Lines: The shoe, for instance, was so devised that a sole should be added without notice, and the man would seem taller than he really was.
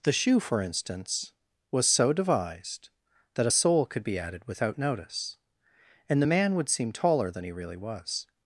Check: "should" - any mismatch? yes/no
yes